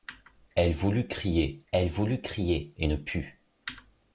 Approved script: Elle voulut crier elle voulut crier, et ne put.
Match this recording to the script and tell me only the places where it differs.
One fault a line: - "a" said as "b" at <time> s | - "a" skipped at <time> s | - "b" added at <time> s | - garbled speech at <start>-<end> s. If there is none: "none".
none